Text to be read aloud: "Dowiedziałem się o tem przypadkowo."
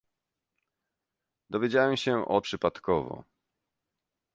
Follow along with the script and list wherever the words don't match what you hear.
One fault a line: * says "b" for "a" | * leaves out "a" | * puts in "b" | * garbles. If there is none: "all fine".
* leaves out "tem"